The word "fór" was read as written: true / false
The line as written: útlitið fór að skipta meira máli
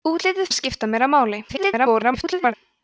false